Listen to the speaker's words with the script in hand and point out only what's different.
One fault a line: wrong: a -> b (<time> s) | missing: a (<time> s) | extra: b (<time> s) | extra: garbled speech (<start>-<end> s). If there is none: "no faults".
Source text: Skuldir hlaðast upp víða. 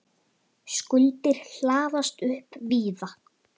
no faults